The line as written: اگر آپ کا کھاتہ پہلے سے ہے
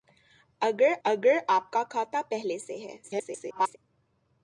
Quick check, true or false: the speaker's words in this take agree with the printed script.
false